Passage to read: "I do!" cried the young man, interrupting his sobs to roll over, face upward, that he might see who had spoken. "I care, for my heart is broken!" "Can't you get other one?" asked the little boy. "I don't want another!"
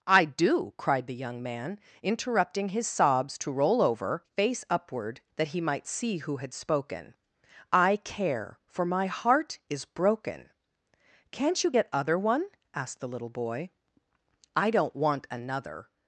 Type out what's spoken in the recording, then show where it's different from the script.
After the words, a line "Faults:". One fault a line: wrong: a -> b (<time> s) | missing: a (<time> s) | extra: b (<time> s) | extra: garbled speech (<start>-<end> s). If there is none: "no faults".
"I do!" cried the young man, interrupting his sobs to roll over, face upward, that he might see who had spoken. "I care, for my heart is broken!" "Can't you get other one?" asked the little boy. "I don't want another!"
Faults:
no faults